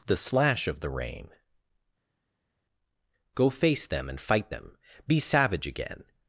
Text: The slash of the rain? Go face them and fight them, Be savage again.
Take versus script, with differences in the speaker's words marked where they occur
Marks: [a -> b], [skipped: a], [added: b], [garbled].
The slash of the rain? Go face them and fight them, Be savage again.